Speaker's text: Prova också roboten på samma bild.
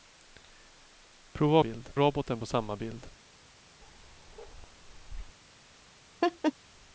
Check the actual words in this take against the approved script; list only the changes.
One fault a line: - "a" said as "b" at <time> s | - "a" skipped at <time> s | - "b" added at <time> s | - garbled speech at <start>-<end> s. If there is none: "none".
- "också" said as "bild" at 1.6 s